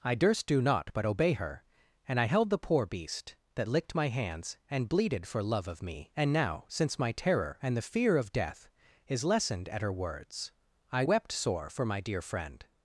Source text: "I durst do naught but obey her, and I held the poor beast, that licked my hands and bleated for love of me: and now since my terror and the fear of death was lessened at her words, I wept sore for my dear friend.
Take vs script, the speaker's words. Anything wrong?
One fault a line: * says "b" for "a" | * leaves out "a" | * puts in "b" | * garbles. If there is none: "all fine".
* says "is" for "was"